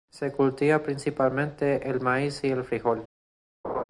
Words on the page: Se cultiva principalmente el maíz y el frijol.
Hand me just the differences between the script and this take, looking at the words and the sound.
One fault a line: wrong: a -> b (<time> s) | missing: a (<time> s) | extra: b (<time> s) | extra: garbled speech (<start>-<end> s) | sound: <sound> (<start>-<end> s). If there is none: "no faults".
sound: laugh (3.6-3.8 s)